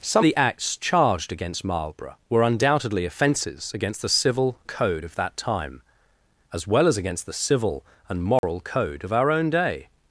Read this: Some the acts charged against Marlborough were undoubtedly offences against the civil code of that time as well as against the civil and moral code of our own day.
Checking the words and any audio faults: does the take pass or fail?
fail